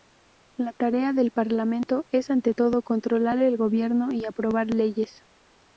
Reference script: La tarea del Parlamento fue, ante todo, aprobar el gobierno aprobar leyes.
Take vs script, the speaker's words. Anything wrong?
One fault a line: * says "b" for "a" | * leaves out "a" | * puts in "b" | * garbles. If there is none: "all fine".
* says "es" for "fue"
* says "controlar" for "aprobar"
* puts in "y"